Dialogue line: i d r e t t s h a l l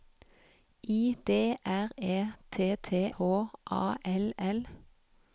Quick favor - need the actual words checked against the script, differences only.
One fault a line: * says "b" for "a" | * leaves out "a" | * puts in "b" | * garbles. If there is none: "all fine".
* leaves out "s"